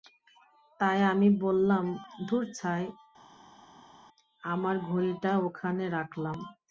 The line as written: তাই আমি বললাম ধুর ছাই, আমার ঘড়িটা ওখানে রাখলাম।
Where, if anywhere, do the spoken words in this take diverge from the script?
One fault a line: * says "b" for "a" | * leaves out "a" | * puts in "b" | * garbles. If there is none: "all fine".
all fine